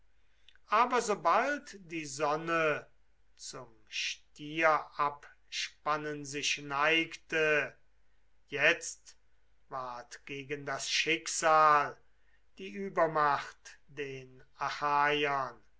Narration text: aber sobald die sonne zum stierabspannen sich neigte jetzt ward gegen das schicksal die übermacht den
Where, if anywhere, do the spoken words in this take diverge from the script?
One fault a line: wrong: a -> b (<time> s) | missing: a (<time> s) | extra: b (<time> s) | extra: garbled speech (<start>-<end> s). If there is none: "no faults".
no faults